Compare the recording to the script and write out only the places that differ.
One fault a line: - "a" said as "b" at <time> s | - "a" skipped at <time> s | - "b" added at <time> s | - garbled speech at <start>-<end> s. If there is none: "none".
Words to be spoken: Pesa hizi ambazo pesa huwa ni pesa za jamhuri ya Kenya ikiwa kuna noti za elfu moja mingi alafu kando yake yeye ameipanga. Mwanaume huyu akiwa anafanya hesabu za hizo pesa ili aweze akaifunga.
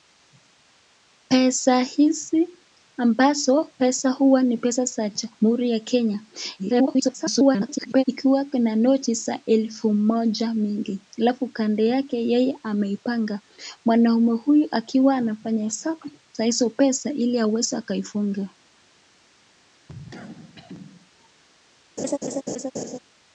- garbled speech at 6.6-8.0 s